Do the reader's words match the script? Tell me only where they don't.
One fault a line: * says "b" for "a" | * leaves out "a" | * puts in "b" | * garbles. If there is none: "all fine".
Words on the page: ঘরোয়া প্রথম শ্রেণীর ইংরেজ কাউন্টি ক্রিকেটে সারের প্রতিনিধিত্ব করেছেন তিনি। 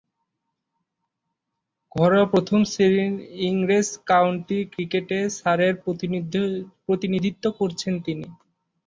all fine